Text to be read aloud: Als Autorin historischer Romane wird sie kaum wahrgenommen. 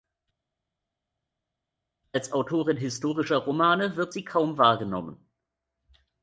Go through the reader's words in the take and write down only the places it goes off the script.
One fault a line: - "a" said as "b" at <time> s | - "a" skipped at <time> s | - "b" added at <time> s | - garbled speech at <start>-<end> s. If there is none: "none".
none